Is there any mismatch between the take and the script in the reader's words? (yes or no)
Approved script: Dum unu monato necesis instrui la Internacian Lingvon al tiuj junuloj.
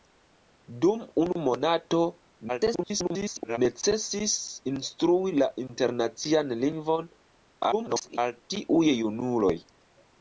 yes